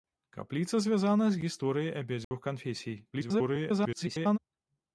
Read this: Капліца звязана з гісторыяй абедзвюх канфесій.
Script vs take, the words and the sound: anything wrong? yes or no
yes